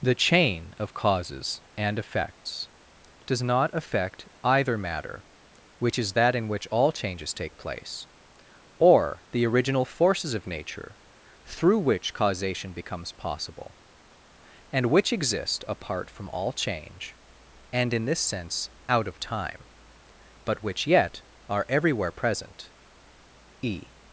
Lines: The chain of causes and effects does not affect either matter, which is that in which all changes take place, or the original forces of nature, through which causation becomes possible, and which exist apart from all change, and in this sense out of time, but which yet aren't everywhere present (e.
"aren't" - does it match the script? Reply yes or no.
no